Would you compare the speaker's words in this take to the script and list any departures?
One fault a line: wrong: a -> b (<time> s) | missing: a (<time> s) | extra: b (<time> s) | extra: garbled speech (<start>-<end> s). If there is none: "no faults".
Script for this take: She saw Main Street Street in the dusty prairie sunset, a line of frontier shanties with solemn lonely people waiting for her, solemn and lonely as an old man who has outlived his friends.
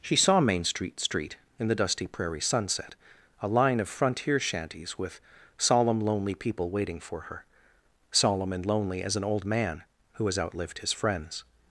no faults